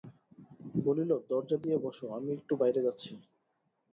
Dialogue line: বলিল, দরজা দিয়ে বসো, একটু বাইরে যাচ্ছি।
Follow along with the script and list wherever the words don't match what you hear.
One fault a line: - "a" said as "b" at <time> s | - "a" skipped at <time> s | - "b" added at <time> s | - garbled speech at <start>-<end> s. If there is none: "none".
- "আমি" added at 2.2 s